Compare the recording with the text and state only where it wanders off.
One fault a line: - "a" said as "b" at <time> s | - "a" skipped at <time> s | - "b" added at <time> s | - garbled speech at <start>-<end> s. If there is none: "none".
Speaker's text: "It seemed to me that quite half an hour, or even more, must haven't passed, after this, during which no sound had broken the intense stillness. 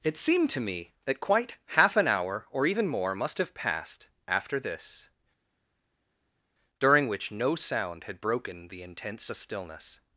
- "haven't" said as "have" at 3.4 s